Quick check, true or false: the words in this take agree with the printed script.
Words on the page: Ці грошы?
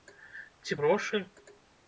true